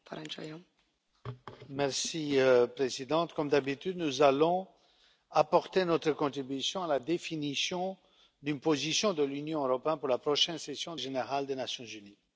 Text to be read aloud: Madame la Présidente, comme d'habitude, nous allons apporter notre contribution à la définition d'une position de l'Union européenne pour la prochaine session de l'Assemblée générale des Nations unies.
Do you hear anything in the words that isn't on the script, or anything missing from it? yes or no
yes